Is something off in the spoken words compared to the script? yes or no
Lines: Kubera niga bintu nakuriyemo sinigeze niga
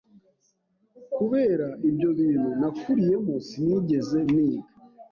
yes